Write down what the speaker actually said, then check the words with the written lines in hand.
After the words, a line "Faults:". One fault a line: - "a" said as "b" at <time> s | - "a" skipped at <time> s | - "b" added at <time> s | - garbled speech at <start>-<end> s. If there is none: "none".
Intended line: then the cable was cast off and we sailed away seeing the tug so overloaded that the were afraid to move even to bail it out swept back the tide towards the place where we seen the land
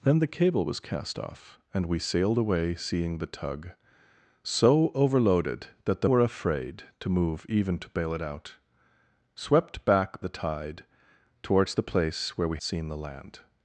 then the cable was cast off and we sailed away seeing the tug so overloaded that the were afraid to move even to bail it out swept back the tide towards the place where we seen the land
Faults:
none